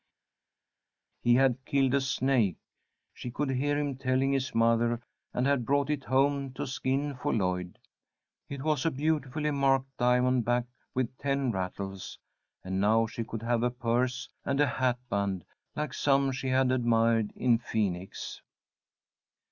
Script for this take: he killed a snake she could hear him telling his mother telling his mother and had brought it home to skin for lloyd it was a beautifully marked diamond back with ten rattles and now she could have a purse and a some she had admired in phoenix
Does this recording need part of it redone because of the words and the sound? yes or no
yes